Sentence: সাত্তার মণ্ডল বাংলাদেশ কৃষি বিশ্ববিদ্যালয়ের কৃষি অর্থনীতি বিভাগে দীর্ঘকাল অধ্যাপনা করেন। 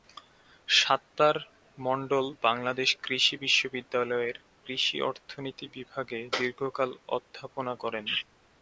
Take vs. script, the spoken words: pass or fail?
pass